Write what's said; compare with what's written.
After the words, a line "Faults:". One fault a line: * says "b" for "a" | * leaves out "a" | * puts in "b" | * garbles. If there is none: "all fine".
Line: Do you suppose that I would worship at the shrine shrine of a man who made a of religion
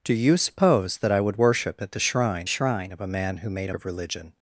Do you suppose that I would worship at the shrine shrine of a man who made a of religion
Faults:
all fine